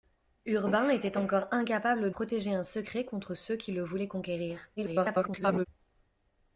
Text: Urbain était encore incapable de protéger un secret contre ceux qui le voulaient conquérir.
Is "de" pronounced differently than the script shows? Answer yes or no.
yes